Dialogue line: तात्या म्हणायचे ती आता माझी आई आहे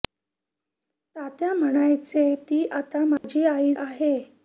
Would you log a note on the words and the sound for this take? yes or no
yes